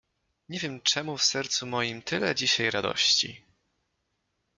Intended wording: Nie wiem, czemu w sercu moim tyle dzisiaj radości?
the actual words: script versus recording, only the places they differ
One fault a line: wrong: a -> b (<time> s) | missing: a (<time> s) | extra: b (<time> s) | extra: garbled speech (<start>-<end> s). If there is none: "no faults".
no faults